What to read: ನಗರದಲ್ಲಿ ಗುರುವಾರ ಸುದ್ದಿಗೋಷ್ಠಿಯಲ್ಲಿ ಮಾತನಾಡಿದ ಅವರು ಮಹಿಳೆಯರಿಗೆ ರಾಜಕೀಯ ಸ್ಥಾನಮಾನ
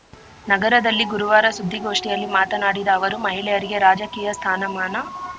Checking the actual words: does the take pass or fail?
pass